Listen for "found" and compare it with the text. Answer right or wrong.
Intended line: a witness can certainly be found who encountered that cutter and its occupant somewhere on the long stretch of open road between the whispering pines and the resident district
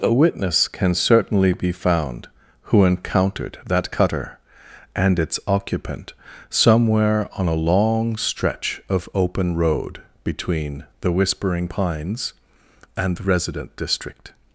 right